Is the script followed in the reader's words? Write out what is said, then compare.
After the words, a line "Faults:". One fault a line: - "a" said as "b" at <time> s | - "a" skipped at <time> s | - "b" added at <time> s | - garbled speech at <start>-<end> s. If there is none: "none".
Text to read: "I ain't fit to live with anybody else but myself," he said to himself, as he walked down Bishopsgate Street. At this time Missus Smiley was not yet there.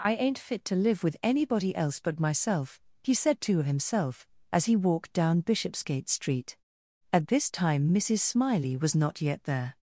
"I ain't fit to live with anybody else but myself," he said to himself, as he walked down Bishopsgate Street. At this time Missus Smiley was not yet there.
Faults:
none